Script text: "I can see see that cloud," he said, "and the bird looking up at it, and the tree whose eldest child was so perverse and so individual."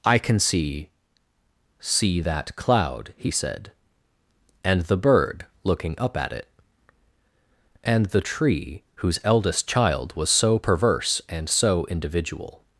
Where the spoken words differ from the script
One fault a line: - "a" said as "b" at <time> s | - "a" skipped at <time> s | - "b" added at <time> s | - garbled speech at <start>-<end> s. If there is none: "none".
none